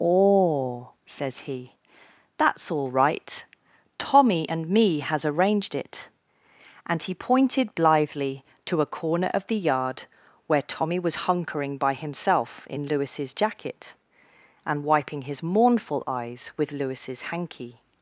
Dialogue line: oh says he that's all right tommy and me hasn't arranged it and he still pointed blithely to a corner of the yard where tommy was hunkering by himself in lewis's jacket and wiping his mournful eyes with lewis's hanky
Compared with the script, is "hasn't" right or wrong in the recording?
wrong